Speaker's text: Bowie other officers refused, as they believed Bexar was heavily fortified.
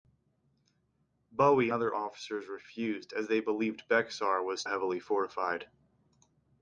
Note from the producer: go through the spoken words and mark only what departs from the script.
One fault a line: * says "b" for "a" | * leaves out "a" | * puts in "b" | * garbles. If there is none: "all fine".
all fine